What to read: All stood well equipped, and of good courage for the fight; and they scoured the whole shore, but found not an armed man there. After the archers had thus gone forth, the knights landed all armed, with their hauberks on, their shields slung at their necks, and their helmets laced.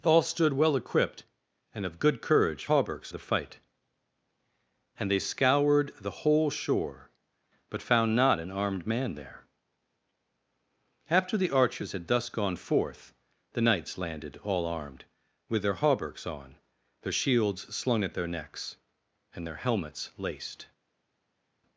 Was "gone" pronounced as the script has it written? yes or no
yes